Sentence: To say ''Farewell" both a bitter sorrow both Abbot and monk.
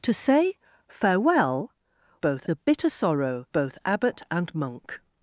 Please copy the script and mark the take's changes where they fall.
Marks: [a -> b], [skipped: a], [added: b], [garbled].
To say ''Farewell" both a bitter sorrow both Abbot and monk.